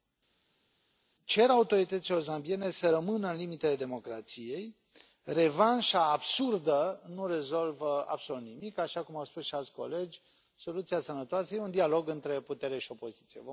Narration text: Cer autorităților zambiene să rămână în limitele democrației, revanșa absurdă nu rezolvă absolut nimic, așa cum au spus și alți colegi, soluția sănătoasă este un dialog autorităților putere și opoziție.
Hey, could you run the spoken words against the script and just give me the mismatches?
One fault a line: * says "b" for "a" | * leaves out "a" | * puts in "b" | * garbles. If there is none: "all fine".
* says "între" for "autorităților"